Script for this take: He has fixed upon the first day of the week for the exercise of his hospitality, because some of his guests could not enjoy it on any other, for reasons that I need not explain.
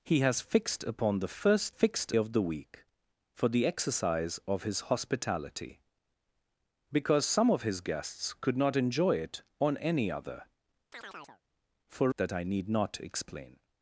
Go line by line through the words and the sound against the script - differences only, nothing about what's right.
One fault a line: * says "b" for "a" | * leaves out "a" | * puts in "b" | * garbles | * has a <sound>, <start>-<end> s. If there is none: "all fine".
* says "fixed" for "day"
* has a chirp, 10.9-11.4 s
* leaves out "reasons"